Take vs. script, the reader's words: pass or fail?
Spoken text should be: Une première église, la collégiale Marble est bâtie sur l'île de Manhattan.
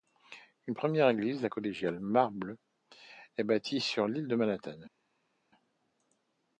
pass